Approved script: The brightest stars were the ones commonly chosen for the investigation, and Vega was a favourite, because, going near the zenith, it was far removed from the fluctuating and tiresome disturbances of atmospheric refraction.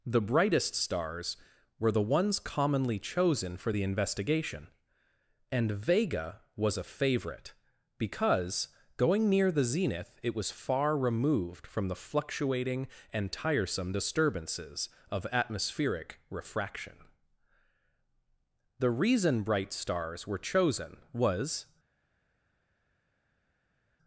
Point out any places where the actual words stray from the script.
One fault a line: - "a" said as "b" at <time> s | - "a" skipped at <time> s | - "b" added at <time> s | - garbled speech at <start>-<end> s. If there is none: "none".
- "The reason bright stars were chosen was" added at 18.8 s